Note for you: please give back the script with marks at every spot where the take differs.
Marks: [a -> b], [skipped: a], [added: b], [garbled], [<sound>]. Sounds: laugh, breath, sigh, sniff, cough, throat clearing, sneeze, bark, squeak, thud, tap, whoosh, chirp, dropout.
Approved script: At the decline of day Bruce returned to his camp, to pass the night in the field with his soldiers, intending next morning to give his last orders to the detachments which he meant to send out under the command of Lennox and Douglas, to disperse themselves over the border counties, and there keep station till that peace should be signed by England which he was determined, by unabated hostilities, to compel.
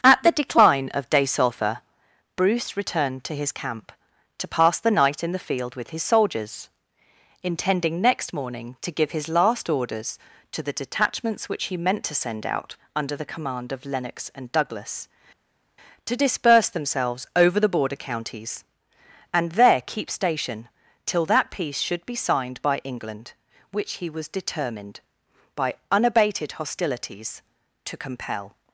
At the decline of day [added: sulphur] Bruce returned to his camp, to pass the night in the field with his soldiers, intending next morning to give his last orders to the detachments which he meant to send out under the command of Lennox and Douglas, to disperse themselves over the border counties, and there keep station till that peace should be signed by England which he was determined, by unabated hostilities, to compel.